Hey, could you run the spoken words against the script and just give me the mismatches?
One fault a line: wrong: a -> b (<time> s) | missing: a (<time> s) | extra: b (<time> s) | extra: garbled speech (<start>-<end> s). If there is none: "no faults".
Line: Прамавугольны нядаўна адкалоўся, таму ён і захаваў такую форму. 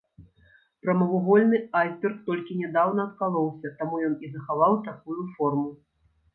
extra: айсберг толькі (1.8 s)